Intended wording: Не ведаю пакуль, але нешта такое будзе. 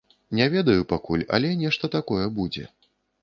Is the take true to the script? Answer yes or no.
yes